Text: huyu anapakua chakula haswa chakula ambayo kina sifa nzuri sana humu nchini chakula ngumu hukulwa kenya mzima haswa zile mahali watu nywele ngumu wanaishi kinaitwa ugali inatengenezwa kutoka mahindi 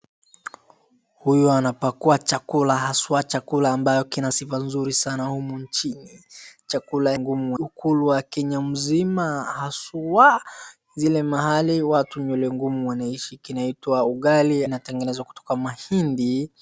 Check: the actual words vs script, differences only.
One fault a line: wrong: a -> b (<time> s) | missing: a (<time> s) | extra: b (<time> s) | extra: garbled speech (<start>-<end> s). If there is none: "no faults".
no faults